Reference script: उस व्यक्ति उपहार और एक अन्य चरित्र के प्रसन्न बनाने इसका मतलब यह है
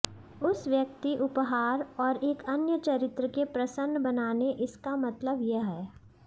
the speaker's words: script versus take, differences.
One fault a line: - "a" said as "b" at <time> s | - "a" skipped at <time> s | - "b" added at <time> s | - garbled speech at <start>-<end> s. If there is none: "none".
none